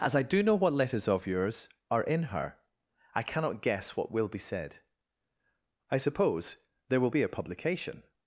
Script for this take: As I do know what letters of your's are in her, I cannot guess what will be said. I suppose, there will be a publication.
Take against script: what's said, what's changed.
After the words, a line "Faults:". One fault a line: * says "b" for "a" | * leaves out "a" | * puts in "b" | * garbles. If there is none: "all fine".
As I do know what letters of your's are in her, I cannot guess what will be said. I suppose, there will be a publication.
Faults:
all fine